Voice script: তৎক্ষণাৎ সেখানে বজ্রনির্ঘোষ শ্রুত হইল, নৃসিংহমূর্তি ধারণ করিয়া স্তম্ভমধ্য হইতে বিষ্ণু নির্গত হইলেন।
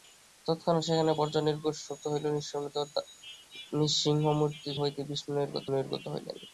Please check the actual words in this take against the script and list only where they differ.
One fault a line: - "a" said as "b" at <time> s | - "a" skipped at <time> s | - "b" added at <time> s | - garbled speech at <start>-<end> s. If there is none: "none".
- "ধারণ করিয়া স্তম্ভমধ্য" skipped at 4.7 s
- "নির্গত" added at 5.7 s